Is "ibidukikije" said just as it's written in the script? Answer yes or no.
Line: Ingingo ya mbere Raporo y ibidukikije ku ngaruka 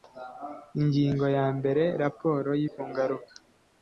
no